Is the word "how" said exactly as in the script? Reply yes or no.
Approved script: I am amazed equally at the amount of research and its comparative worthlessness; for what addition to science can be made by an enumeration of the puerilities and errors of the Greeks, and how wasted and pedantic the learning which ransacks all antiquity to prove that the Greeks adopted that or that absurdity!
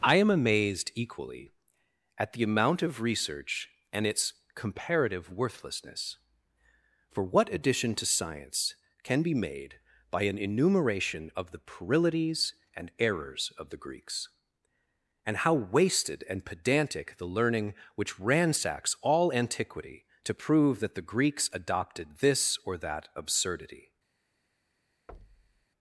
yes